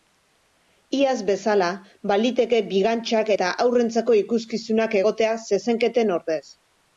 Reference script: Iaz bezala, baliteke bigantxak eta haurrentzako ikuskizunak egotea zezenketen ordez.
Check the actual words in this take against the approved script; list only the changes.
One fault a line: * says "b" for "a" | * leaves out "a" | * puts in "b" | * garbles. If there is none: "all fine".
all fine